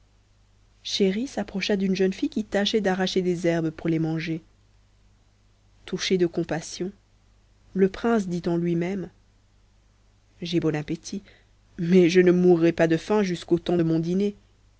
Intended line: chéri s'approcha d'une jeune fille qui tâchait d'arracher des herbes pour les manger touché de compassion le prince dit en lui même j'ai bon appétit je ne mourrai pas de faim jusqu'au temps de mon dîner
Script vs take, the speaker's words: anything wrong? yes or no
yes